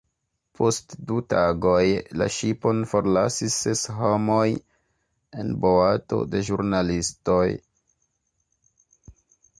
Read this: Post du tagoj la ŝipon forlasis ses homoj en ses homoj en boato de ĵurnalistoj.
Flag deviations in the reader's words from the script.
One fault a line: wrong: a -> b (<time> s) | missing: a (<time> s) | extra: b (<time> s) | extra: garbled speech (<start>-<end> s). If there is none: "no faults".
missing: ses homoj en (5.5 s)